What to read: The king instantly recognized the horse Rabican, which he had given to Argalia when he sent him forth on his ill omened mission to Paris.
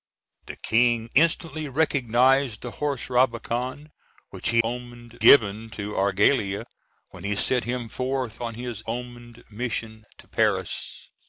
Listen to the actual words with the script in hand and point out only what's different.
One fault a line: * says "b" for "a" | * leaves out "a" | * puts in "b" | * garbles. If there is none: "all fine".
* says "omened" for "had"
* leaves out "ill"